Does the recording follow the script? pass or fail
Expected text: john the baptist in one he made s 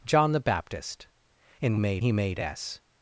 fail